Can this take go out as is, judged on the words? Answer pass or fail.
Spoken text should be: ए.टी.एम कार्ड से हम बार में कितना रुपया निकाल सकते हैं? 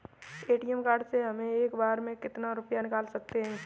fail